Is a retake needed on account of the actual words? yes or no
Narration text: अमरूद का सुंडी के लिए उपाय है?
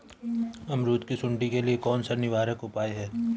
yes